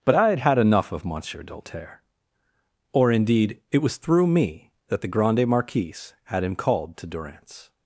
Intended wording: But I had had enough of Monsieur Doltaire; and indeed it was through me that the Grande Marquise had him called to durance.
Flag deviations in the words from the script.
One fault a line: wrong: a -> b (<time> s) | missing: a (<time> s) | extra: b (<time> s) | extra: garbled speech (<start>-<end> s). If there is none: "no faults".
wrong: and -> or (2.9 s)